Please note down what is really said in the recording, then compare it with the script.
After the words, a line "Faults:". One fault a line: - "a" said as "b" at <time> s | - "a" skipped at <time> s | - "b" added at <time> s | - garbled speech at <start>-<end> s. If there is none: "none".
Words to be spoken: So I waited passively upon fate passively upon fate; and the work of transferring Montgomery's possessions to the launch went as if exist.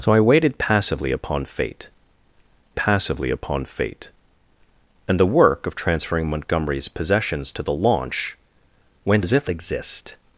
So I waited passively upon fate passively upon fate; and the work of transferring Montgomery's possessions to the launch went as if exist.
Faults:
none